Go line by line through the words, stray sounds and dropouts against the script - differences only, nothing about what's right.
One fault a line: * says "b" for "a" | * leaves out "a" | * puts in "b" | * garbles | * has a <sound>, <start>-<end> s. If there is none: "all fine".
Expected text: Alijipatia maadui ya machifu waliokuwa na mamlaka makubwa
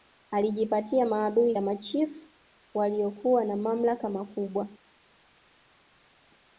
all fine